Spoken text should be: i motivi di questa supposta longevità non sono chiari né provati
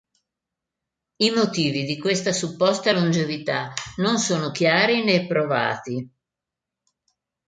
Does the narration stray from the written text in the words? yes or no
no